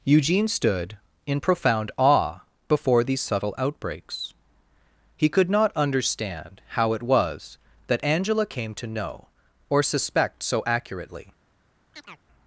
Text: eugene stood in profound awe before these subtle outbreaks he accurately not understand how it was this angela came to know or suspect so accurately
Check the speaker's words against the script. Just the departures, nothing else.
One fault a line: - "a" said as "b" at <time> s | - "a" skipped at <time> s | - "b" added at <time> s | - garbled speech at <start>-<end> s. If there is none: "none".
- "accurately" said as "could" at 5.3 s
- "this" said as "that" at 7.8 s